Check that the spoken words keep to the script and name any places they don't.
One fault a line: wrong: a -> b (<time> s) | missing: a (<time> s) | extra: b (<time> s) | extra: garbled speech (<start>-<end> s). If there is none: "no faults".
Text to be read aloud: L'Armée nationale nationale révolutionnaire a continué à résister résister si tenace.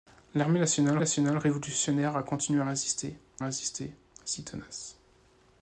no faults